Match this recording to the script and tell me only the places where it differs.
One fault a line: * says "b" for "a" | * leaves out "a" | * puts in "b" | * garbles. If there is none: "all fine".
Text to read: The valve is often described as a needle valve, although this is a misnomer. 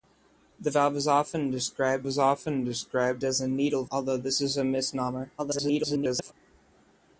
* puts in "is often described"
* leaves out "valve"
* garbles